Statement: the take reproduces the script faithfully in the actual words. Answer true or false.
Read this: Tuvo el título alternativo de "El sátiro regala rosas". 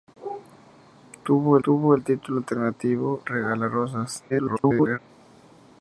false